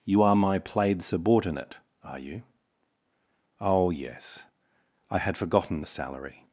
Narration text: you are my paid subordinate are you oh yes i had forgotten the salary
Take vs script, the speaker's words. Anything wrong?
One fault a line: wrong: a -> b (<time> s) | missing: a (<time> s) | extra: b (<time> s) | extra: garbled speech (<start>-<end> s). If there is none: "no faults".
wrong: paid -> played (0.6 s)